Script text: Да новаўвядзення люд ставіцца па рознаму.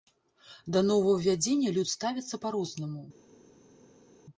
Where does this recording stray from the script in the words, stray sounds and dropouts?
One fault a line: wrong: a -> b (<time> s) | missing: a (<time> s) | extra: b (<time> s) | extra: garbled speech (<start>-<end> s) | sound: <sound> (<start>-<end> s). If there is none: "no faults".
no faults